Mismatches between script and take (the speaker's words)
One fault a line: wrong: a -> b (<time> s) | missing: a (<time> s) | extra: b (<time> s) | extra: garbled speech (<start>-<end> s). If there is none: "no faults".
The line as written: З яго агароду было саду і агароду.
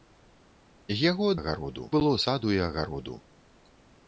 no faults